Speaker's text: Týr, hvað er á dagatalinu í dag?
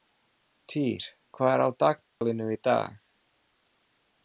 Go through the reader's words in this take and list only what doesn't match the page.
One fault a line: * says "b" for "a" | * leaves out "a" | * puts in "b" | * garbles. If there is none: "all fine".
all fine